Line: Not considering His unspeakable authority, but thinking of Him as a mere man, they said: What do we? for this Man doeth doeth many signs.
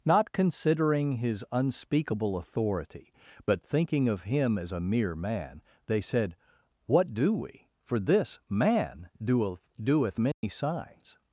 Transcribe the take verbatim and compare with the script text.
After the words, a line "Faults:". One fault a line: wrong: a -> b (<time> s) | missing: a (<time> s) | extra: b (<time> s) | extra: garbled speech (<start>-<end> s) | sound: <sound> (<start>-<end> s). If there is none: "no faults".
Not considering His unspeakable authority, but thinking of Him as a mere man, they said: What do we? for this Man doeth doeth many signs.
Faults:
sound: dropout (10.3-10.4 s)